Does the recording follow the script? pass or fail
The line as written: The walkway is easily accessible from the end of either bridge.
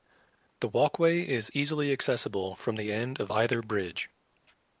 pass